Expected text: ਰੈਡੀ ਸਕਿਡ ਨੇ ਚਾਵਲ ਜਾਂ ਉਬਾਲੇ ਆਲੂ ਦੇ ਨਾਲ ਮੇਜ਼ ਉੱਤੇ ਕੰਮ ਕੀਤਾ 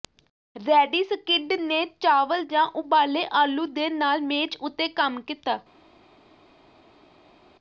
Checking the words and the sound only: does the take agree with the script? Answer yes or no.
yes